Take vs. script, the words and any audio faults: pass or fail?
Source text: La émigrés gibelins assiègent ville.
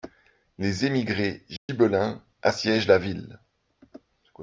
fail